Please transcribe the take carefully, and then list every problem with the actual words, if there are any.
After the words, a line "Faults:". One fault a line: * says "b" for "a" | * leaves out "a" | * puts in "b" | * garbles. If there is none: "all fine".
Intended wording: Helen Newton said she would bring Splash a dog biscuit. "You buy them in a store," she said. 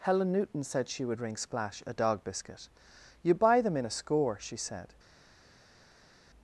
Helen Newton said she would ring Splash a dog biscuit. "You buy them in a score," she said.
Faults:
* says "ring" for "bring"
* says "score" for "store"